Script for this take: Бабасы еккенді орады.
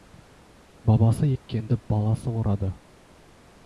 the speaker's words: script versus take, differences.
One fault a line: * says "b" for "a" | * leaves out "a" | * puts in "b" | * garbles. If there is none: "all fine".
* puts in "баласы"